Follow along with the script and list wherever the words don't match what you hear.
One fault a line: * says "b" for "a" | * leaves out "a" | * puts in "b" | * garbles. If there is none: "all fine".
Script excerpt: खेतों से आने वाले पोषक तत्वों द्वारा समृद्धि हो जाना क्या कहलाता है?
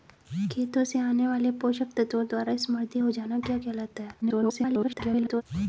* garbles